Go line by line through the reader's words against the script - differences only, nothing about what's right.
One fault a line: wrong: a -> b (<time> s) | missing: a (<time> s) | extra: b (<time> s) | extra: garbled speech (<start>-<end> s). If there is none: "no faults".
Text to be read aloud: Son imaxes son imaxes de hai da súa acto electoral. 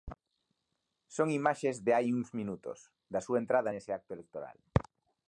wrong: son imaxes de hai -> de hai uns minutos (1.9 s)
extra: entrada nese (3.4 s)